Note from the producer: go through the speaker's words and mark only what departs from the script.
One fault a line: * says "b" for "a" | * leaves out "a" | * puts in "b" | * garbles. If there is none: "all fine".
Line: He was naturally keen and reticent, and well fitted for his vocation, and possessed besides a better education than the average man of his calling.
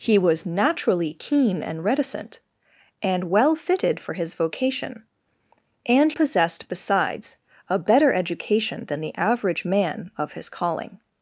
all fine